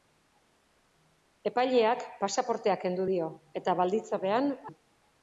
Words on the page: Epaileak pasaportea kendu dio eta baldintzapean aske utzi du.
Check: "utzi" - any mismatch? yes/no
yes